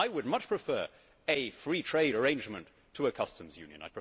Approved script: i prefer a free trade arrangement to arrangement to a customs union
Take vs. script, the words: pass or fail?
fail